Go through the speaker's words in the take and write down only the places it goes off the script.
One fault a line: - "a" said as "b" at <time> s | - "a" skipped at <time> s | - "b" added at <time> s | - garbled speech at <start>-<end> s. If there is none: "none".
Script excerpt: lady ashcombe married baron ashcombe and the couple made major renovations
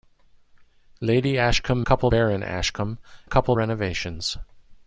- "married" said as "couple" at 1.8 s
- "and" skipped at 3.0 s
- "made major" skipped at 3.6 s